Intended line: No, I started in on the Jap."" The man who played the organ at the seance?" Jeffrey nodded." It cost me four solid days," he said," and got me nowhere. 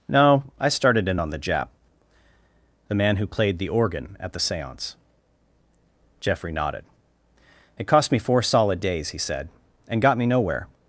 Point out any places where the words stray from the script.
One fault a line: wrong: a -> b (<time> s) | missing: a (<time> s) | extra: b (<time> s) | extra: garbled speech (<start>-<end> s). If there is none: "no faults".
no faults